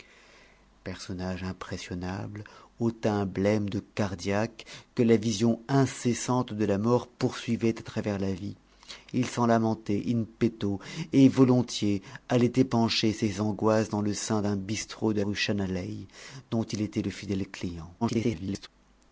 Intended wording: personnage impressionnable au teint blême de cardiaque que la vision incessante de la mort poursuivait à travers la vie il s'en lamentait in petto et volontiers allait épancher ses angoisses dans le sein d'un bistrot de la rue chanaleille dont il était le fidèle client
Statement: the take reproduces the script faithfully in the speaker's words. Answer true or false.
false